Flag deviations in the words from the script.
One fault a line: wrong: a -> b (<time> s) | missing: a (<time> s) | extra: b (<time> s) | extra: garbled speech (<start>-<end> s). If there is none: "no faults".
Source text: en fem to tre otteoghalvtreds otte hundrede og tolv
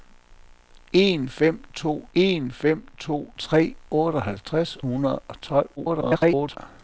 extra: en fem to (2.1 s)
missing: otte (4.8 s)
extra: garbled speech (5.8-6.6 s)